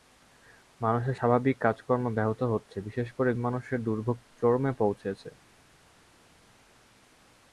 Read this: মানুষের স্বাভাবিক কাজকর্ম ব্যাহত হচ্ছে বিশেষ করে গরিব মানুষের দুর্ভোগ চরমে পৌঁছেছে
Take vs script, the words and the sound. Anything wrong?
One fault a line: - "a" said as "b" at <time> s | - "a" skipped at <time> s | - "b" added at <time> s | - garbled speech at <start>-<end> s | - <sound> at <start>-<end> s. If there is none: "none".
- "গরিব" skipped at 3.3 s